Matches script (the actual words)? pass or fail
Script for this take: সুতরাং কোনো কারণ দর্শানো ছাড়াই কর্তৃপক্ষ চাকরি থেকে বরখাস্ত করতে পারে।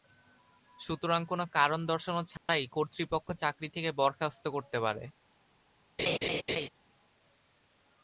pass